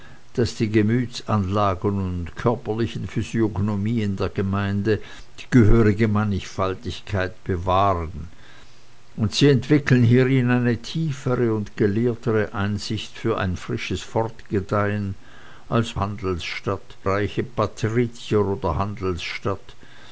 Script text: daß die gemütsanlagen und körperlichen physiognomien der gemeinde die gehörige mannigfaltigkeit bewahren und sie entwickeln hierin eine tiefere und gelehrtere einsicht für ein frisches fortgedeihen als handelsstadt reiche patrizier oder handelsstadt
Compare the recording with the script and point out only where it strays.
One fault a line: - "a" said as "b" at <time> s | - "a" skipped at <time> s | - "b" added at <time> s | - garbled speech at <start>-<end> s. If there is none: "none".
none